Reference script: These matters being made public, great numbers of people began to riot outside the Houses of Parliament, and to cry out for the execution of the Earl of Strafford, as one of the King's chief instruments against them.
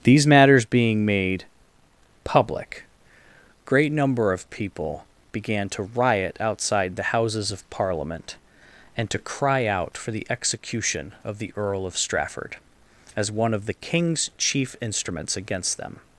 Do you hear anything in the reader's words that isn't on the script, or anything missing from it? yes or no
yes